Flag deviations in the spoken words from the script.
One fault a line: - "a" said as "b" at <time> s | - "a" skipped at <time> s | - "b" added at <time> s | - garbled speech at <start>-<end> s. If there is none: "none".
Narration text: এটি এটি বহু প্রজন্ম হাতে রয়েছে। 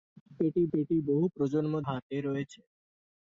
none